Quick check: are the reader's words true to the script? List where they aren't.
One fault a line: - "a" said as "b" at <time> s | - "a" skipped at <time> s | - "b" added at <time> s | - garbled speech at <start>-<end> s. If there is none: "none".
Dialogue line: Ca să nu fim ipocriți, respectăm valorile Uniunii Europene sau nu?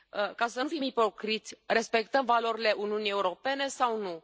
none